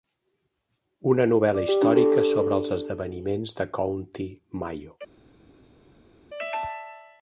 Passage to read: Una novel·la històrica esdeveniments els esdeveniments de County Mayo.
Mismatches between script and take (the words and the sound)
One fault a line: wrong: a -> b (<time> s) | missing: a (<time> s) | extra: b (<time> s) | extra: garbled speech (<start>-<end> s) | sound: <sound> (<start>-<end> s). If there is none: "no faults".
wrong: esdeveniments -> sobre (2.3 s)